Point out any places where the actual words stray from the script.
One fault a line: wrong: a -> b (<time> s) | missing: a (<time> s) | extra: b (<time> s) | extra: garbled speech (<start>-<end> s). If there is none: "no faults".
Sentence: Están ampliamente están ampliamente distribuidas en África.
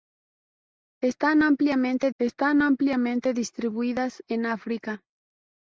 no faults